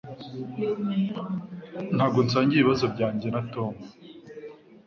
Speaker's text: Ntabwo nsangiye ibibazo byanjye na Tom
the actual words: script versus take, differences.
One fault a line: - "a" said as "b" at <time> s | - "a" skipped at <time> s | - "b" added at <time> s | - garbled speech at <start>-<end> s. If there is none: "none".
none